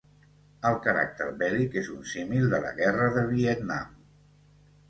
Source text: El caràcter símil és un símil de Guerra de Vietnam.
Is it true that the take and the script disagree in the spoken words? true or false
true